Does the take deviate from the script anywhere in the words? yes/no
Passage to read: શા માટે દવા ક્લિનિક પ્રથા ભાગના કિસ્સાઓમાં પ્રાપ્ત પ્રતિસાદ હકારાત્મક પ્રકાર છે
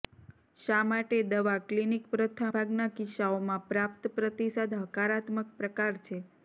no